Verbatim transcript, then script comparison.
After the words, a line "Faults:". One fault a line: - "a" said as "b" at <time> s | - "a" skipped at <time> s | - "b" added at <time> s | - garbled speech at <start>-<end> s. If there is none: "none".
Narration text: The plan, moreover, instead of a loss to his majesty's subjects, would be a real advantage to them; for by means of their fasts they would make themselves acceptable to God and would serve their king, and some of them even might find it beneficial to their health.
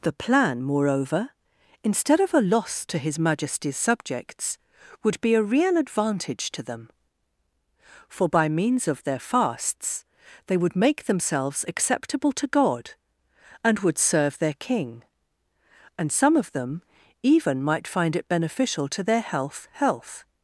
The plan, moreover, instead of a loss to his majesty's subjects, would be a real advantage to them; for by means of their fasts they would make themselves acceptable to God and would serve their king, and some of them even might find it beneficial to their health health.
Faults:
- "health" added at 19.7 s